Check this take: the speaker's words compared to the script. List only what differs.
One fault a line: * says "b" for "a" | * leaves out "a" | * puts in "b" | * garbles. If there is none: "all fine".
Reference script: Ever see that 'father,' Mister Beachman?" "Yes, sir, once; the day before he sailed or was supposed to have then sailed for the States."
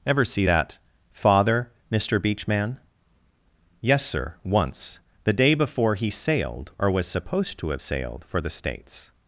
* leaves out "then"